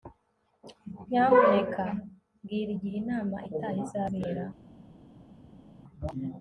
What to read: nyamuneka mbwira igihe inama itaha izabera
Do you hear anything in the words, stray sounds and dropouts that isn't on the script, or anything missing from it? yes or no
no